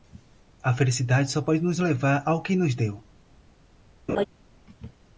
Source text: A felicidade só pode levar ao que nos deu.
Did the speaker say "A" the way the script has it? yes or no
yes